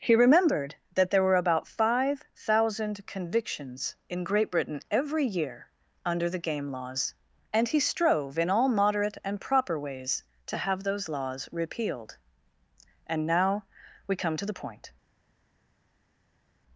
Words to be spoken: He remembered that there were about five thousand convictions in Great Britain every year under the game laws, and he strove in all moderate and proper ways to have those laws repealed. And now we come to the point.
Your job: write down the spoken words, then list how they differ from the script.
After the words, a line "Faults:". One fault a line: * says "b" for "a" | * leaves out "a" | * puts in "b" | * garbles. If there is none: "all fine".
He remembered that there were about five thousand convictions in Great Britain every year under the game laws, and he strove in all moderate and proper ways to have those laws repealed. And now we come to the point.
Faults:
all fine